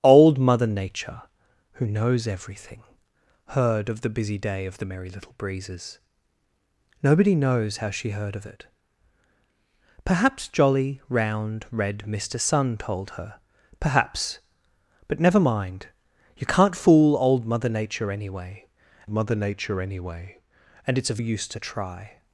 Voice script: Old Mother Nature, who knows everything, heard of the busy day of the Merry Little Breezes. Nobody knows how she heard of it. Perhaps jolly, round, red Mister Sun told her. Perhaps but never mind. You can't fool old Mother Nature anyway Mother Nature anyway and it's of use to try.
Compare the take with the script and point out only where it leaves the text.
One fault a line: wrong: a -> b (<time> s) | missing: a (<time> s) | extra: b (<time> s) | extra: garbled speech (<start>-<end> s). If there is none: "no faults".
no faults